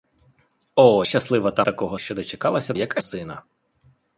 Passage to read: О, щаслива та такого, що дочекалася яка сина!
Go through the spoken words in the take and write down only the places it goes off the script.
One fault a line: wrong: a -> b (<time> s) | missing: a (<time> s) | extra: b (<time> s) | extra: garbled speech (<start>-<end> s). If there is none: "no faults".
no faults